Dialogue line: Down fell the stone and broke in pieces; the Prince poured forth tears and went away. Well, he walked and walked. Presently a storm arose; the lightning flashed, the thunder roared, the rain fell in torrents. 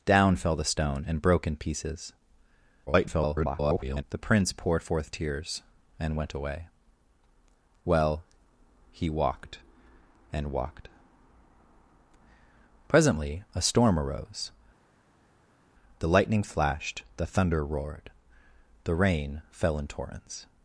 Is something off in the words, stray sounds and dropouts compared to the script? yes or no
yes